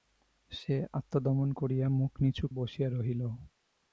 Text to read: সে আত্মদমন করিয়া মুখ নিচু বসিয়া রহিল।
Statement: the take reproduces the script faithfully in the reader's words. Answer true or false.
true